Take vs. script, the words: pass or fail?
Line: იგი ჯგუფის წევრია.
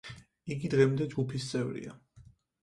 fail